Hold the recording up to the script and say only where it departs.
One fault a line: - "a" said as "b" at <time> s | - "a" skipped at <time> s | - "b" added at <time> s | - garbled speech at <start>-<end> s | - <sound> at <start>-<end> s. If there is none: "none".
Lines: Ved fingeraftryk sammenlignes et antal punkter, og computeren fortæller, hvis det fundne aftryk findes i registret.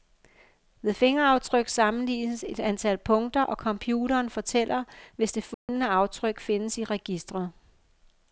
- dropout at 5.5-5.7 s